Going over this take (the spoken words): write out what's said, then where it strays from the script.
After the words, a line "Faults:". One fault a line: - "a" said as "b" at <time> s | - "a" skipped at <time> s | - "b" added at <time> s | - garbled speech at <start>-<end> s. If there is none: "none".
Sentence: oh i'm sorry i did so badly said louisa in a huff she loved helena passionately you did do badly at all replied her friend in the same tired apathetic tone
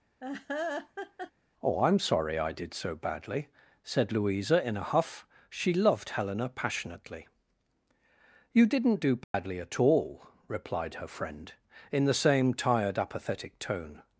oh i'm sorry i did so badly said louisa in a huff she loved helena passionately you didn't do badly at all replied her friend in the same tired apathetic tone
Faults:
- "did" said as "didn't" at 8.7 s